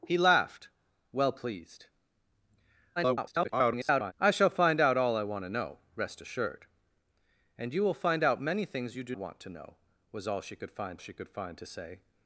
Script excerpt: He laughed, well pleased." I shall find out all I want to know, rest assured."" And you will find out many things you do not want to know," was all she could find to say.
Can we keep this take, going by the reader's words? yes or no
no